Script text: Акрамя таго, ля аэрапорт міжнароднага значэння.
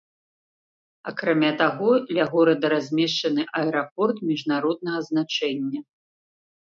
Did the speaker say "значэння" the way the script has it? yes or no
yes